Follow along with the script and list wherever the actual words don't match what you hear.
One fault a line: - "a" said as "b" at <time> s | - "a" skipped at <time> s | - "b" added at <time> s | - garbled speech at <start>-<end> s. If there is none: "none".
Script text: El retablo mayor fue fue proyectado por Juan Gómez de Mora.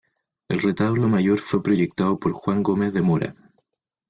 - "fue" skipped at 1.6 s